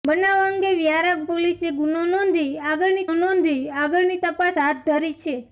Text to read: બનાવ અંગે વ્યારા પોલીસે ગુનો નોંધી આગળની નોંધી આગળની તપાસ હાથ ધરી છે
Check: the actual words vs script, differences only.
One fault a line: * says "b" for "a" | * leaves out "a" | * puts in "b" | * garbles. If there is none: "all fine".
all fine